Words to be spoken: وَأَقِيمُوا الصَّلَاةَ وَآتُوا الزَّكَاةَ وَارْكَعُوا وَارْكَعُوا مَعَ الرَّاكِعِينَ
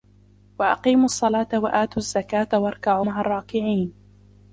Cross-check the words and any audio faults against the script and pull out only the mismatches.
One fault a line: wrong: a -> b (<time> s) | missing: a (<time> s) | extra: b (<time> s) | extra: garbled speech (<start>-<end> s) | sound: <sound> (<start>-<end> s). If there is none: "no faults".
missing: وَارْكَعُوا (3.1 s)